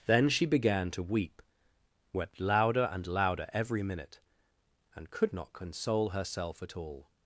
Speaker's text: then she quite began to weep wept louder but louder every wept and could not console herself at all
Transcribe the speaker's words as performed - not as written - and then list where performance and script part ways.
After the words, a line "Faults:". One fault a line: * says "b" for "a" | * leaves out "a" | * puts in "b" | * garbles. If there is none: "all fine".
then she began to weep wept louder and louder every minute and could not console herself at all
Faults:
* leaves out "quite"
* says "and" for "but"
* says "minute" for "wept"